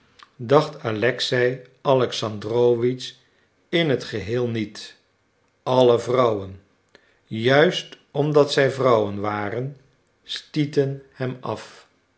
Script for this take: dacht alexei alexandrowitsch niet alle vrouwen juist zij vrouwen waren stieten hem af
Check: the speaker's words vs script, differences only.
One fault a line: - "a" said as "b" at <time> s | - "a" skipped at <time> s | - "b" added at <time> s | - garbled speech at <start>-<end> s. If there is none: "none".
- "in het geheel" added at 3.7 s
- "omdat" added at 8.1 s